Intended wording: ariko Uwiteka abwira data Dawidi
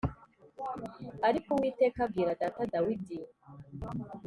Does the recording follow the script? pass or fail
pass